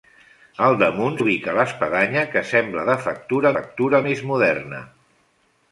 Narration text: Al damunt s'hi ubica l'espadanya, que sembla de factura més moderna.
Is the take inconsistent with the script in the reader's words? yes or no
yes